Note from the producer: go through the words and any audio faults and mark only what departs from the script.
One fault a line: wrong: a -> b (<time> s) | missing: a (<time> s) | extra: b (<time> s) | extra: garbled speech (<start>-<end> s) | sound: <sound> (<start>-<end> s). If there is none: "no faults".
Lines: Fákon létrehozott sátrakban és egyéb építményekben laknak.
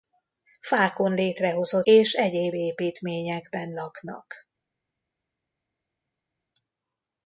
missing: sátrakban (1.9 s)